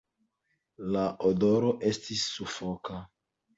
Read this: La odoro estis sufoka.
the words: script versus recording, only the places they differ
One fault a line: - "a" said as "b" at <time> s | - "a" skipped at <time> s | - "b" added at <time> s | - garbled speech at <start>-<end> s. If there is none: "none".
none